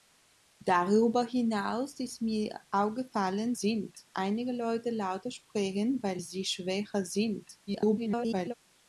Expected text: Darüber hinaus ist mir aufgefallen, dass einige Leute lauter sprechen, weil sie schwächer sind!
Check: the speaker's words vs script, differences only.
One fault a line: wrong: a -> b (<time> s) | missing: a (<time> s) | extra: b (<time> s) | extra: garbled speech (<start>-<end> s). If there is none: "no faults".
wrong: dass -> sind (3.5 s)
extra: garbled speech (7.7-8.5 s)